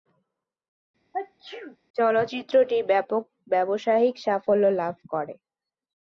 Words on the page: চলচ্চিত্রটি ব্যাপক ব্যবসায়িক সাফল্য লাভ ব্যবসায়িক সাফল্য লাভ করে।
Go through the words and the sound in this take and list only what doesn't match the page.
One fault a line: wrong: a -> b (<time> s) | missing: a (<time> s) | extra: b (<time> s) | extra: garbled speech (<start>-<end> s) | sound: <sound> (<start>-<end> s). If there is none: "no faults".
sound: sneeze (1.1-1.8 s)
missing: ব্যবসায়িক সাফল্য লাভ (4.9 s)